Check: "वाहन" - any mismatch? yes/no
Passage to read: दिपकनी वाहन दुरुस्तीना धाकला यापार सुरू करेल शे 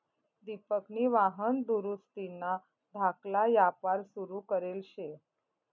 no